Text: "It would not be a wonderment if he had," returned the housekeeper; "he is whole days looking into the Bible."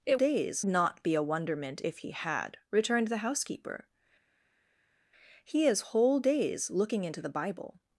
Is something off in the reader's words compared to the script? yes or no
yes